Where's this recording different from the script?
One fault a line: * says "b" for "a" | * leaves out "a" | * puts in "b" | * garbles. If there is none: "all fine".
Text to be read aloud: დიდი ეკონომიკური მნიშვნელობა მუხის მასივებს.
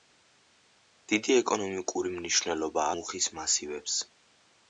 all fine